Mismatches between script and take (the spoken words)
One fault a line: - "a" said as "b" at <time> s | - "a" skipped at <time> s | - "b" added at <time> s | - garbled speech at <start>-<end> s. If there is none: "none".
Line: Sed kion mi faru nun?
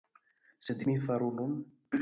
- "kion" skipped at 0.8 s